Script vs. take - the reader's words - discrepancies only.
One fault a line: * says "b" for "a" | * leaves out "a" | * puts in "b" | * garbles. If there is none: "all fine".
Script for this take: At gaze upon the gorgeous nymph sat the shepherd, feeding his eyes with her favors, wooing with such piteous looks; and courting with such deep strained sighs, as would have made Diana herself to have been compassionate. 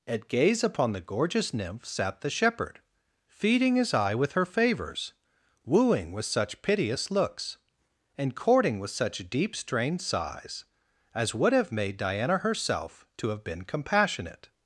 * says "eye" for "eyes"